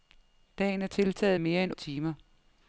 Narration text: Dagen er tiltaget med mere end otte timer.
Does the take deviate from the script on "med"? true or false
true